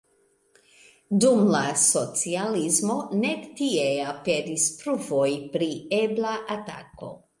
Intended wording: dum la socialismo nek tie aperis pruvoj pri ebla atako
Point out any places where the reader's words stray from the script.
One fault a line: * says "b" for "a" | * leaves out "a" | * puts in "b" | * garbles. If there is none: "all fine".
all fine